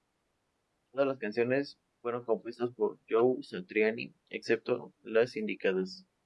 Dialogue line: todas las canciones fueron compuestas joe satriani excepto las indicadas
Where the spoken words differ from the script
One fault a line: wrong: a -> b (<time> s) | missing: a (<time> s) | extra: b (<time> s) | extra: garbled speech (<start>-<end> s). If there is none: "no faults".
extra: por (2.7 s)